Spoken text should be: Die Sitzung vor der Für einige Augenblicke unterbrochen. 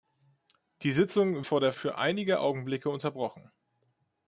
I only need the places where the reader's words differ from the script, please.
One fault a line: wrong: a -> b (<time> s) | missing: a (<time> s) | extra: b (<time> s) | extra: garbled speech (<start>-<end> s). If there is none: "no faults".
no faults